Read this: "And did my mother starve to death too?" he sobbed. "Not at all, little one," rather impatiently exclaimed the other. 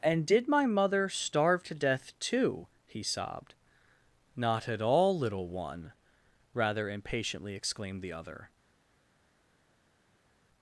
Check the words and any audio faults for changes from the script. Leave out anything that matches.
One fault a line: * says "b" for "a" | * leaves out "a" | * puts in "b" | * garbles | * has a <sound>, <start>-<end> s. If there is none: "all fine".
all fine